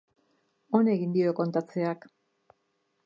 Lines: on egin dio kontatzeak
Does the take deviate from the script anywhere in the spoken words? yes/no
no